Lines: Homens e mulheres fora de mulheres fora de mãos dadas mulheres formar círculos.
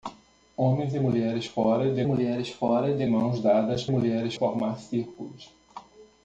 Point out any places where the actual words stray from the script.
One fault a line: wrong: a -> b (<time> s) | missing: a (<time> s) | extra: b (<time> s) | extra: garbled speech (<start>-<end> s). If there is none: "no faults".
no faults